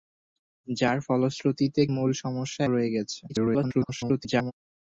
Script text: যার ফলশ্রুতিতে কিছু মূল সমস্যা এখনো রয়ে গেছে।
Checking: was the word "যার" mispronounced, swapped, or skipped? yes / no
no